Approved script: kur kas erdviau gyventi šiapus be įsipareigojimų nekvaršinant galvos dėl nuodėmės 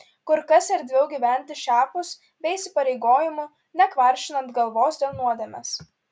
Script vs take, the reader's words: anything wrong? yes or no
no